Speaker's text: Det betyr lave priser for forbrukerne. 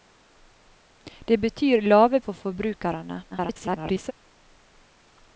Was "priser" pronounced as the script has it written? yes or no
no